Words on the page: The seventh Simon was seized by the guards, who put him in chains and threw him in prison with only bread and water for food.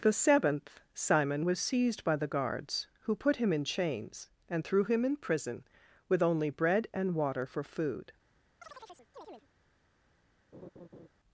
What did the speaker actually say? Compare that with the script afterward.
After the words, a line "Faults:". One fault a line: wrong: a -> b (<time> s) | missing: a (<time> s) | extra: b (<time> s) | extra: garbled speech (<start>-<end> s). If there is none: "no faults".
The seventh Simon was seized by the guards, who put him in chains and threw him in prison with only bread and water for food.
Faults:
no faults